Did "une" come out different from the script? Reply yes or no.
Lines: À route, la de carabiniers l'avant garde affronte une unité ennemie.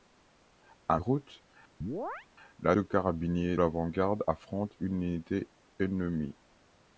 no